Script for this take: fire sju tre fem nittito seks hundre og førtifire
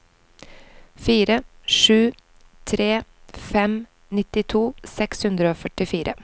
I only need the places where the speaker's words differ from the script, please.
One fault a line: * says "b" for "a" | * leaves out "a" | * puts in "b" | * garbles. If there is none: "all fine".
all fine